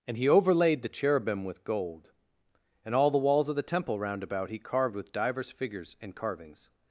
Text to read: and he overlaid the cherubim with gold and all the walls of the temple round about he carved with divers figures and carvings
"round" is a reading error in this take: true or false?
false